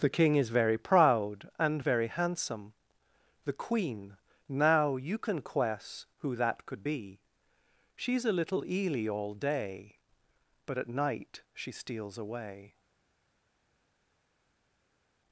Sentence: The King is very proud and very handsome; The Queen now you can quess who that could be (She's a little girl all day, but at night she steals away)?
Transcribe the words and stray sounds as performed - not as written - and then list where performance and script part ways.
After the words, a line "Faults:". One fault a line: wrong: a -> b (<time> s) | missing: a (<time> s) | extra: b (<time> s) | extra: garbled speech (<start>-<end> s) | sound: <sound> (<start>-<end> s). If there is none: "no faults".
The King is very proud and very handsome; The Queen now you can quess who that could be (She's a little eely all day, but at night she steals away)?
Faults:
wrong: girl -> eely (8.6 s)